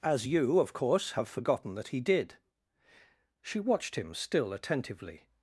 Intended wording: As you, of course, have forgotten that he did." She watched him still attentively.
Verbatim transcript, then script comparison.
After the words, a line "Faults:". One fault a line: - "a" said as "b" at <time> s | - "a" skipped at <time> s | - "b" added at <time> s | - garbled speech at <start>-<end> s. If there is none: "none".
As you, of course, have forgotten that he did." She watched him still attentively.
Faults:
none